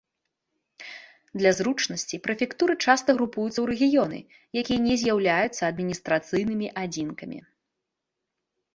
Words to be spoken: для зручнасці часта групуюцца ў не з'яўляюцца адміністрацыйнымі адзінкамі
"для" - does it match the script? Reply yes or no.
yes